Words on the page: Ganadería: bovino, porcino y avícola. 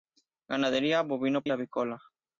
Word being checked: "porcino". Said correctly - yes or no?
no